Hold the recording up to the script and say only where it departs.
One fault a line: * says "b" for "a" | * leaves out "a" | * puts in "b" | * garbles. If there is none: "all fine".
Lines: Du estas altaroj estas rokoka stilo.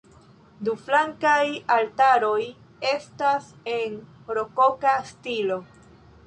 * says "flankaj" for "estas"
* puts in "en"